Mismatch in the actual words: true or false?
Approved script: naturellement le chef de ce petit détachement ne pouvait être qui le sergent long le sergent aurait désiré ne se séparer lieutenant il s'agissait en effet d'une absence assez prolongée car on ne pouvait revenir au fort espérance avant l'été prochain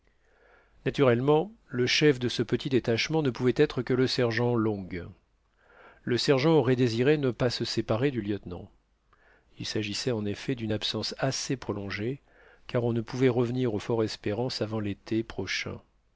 true